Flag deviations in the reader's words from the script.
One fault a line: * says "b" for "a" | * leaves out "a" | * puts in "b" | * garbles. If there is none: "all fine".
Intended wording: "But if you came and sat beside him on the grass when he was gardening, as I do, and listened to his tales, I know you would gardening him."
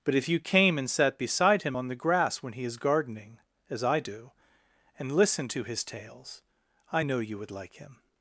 * says "is" for "was"
* says "like" for "gardening"